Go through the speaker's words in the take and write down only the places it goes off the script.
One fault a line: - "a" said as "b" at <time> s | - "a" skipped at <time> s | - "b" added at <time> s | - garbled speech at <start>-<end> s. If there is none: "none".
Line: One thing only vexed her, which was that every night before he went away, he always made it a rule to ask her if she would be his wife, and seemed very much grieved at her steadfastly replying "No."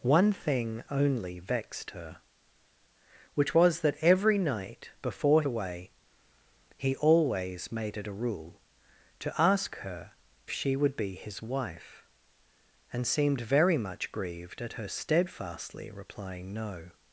- "he went" skipped at 5.4 s
- "if" skipped at 10.1 s